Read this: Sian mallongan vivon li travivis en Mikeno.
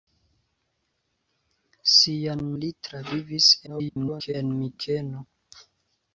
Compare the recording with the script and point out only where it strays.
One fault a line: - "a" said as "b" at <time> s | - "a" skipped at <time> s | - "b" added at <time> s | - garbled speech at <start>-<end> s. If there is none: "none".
- "mallongan vivon" skipped at 2.4 s
- garbled speech at 3.7-4.3 s